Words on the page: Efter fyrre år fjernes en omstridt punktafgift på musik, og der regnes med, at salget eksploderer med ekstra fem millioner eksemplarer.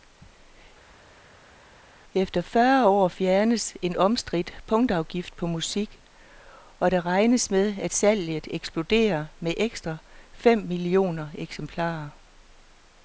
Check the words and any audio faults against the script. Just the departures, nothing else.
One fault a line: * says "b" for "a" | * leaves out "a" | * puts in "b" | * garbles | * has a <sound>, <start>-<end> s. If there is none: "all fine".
all fine